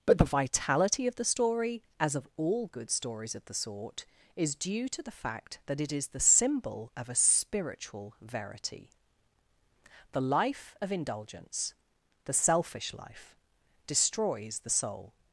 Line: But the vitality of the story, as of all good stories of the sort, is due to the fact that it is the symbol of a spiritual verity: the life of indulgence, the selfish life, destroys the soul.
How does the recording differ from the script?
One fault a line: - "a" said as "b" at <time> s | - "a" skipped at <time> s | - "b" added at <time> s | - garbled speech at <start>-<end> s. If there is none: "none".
none